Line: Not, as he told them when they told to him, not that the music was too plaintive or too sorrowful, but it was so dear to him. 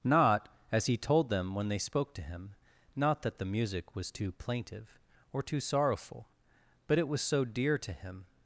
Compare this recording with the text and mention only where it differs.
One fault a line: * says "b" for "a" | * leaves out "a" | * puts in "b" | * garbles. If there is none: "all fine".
* says "spoke" for "told"